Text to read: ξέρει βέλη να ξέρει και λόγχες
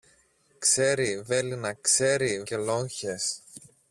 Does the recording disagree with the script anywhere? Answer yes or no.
no